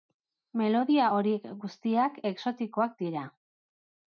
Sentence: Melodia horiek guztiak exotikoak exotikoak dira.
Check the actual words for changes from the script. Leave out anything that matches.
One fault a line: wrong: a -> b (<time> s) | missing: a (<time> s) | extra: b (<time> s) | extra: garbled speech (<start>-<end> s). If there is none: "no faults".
missing: exotikoak (3.0 s)